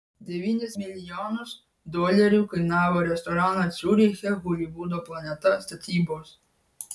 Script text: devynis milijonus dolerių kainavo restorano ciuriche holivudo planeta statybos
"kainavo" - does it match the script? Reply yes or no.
yes